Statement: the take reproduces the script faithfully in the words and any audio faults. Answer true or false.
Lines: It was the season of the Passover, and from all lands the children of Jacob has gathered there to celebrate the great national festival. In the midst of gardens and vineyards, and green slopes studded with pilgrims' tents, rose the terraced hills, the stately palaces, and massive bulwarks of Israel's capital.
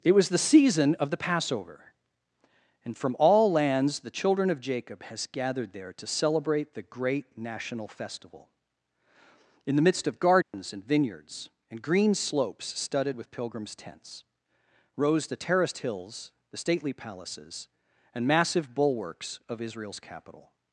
false